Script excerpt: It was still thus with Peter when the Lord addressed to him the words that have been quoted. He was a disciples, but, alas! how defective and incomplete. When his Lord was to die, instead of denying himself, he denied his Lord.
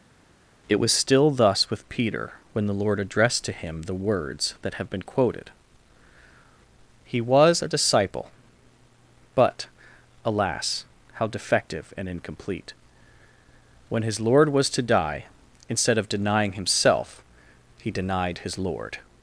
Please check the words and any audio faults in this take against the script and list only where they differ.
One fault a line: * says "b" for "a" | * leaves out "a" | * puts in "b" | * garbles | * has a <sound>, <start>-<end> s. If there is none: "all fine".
* says "disciple" for "disciples"